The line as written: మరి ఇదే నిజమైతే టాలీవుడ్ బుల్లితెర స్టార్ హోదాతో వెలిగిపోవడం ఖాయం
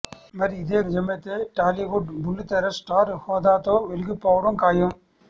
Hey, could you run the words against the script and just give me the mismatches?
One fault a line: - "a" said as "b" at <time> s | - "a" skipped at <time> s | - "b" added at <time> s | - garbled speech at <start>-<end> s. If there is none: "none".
none